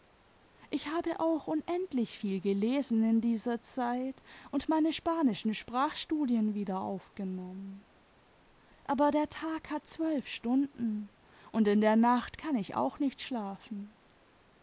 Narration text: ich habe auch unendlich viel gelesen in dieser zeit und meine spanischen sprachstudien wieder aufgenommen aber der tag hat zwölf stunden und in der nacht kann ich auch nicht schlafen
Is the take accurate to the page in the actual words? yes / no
yes